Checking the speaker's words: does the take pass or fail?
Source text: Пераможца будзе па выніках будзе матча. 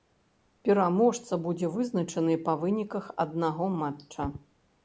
fail